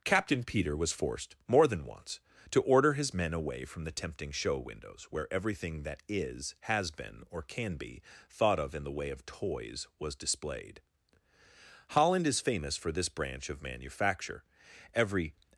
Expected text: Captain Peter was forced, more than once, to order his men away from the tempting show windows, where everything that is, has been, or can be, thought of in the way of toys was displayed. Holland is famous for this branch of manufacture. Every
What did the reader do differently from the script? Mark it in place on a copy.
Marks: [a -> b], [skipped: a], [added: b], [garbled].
Captain Peter was forced, more than once, to order his men away from the tempting show windows, where everything that is, has been, or can be, thought of in the way of toys was displayed. Holland is famous for this branch of manufacture. Every